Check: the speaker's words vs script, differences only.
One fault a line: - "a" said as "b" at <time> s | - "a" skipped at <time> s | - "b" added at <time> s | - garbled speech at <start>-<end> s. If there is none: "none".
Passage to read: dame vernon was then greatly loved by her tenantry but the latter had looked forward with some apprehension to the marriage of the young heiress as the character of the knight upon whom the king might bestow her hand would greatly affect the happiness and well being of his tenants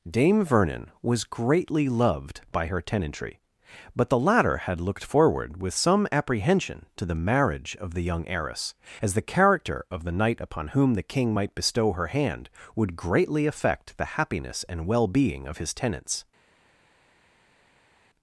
- "then" skipped at 1.2 s